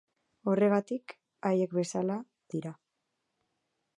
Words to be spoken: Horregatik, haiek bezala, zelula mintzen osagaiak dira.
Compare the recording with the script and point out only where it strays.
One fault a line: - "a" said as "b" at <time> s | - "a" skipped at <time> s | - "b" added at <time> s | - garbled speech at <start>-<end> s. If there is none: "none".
- "zelula mintzen osagaiak" skipped at 2.1 s